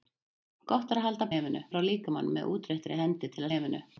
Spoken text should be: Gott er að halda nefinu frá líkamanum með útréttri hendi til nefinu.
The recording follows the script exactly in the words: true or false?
true